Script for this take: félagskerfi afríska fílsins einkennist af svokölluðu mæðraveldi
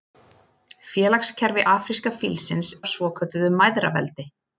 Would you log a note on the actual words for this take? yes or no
yes